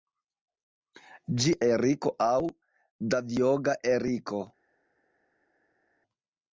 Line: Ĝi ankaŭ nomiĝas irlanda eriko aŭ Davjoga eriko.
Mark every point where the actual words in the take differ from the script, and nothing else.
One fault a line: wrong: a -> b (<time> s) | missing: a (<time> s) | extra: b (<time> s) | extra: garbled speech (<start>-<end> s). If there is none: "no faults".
missing: ankaŭ nomiĝas irlanda (1.5 s)